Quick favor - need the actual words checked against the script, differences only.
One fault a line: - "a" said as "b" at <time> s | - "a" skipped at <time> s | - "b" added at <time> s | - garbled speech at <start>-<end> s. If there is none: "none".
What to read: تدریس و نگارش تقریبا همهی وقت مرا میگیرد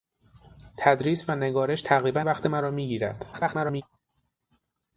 - "همهی" skipped at 2.2 s
- garbled speech at 3.3-3.8 s